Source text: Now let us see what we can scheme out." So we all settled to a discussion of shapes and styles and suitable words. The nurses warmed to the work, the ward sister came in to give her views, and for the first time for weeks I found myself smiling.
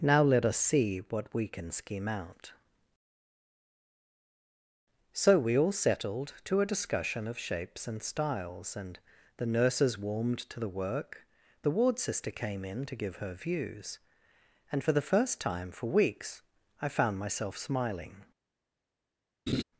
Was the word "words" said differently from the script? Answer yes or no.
yes